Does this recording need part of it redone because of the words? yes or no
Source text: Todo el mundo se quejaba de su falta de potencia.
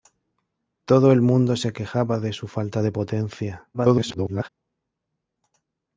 yes